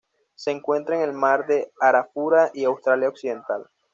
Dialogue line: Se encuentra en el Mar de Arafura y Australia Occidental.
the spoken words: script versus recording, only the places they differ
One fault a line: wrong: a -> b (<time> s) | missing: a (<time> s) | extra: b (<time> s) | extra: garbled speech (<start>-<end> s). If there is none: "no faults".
no faults